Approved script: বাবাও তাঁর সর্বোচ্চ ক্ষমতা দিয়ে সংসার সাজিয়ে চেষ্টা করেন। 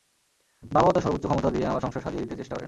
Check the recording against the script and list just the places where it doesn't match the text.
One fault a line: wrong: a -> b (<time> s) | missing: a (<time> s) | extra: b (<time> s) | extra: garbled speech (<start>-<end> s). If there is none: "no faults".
extra: আমার (1.6 s)
extra: দিতে (2.2 s)